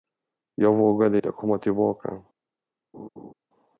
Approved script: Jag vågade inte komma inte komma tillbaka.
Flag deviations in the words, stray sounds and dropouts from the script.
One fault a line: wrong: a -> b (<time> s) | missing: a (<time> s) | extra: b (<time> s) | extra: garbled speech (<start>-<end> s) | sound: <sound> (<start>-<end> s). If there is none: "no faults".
missing: inte komma (1.6 s)
sound: laugh (2.9-3.3 s)